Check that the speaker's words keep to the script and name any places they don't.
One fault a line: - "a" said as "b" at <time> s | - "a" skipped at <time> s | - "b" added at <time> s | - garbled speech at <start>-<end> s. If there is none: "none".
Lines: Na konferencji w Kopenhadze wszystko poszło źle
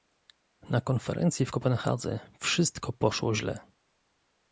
none